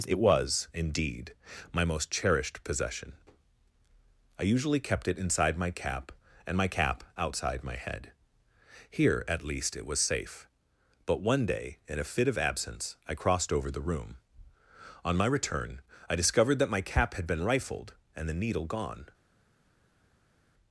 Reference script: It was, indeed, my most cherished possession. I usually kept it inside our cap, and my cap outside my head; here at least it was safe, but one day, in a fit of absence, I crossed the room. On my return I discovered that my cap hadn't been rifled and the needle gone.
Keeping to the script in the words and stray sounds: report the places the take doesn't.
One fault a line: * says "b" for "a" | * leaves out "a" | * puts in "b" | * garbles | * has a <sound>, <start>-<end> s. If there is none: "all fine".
* says "my" for "our"
* puts in "over"
* says "had" for "hadn't"